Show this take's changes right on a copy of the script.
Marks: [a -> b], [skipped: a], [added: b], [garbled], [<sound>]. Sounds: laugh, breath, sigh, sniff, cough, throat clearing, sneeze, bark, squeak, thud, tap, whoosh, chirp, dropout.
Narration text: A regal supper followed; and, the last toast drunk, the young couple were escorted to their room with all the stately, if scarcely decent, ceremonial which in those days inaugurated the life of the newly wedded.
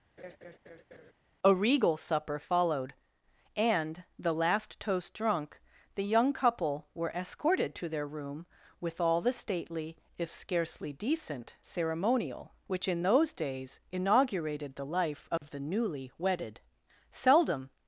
[laugh] A regal supper followed; and, the last toast drunk, the young couple were escorted to their room with all the stately, if scarcely decent, ceremonial which in those days inaugurated the life of [dropout] the newly wedded. [added: Seldom]